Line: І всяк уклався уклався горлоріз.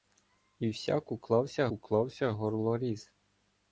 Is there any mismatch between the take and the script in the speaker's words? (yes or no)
no